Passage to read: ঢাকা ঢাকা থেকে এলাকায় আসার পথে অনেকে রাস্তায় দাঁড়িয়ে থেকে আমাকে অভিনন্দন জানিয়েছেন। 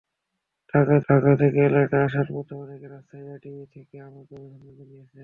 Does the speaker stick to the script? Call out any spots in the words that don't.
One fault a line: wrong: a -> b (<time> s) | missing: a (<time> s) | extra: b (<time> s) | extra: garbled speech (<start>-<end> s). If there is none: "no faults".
no faults